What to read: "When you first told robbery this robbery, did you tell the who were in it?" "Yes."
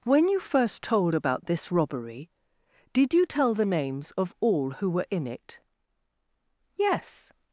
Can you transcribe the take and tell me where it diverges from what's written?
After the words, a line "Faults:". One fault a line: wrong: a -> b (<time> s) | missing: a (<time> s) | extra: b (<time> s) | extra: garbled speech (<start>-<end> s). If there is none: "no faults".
"When you first told about this robbery, did you tell the names of all who were in it?" "Yes."
Faults:
wrong: robbery -> about (1.1 s)
extra: names of all (3.6 s)